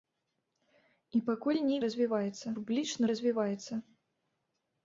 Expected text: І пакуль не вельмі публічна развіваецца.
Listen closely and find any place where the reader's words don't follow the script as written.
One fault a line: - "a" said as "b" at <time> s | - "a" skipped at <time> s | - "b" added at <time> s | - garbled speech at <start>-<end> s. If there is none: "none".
- "вельмі" said as "развіваецца" at 1.9 s